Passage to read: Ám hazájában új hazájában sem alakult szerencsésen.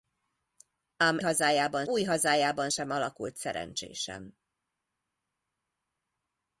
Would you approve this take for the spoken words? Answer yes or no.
yes